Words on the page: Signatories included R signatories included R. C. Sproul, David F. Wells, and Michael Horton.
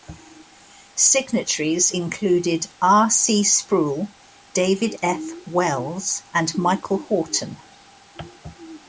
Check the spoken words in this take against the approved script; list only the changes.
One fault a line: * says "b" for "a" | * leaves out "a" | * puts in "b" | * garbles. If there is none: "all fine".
* leaves out "signatories included R"